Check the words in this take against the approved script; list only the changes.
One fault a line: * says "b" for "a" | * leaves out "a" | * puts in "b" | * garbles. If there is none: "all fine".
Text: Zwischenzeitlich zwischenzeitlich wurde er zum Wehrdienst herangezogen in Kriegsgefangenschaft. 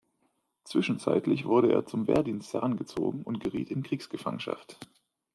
* leaves out "zwischenzeitlich"
* puts in "und geriet"